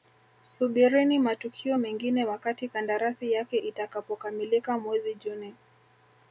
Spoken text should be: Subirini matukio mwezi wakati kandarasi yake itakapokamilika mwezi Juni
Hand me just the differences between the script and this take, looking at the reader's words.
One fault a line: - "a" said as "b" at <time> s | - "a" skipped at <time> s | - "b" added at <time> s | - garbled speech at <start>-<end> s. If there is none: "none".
- "mwezi" said as "mengine" at 1.8 s